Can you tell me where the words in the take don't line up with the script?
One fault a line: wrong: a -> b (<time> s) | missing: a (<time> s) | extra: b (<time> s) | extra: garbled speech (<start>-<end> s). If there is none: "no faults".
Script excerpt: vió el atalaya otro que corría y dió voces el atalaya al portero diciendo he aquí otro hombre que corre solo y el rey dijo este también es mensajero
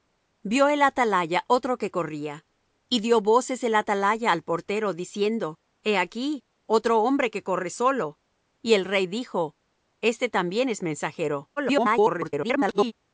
extra: garbled speech (11.6-12.9 s)